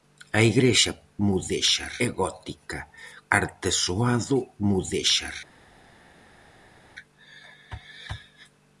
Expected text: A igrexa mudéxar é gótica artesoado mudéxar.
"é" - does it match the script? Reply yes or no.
yes